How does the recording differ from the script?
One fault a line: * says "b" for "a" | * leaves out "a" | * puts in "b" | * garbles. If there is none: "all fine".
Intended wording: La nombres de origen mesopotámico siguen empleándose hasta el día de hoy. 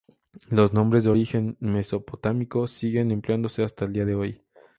* says "Los" for "La"